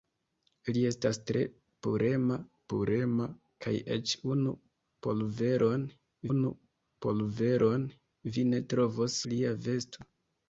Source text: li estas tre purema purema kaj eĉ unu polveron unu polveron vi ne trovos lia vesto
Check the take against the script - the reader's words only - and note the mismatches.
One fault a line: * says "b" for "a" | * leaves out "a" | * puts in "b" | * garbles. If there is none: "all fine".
all fine